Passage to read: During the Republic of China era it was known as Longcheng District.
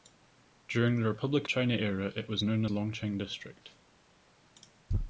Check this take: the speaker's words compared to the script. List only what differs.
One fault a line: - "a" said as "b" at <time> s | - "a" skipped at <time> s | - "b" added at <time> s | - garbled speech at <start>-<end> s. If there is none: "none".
- "of" skipped at 1.5 s
- "as" skipped at 2.6 s